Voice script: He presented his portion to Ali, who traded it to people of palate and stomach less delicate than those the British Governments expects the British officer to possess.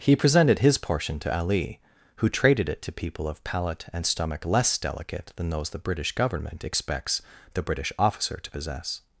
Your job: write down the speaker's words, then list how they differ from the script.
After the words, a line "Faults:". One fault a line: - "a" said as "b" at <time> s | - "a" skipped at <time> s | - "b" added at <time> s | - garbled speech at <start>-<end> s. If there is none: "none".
He presented his portion to Ali, who traded it to people of palate and stomach less delicate than those the British Government expects the British officer to possess.
Faults:
- "Governments" said as "Government" at 6.1 s